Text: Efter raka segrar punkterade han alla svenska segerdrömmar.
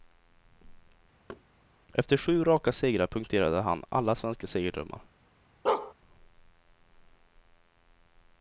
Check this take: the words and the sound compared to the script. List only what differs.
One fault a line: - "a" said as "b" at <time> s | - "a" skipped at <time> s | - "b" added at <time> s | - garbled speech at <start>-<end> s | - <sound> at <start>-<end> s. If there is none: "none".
- thud at 1.3-1.4 s
- "sju" added at 2.1 s
- bark at 5.7-5.9 s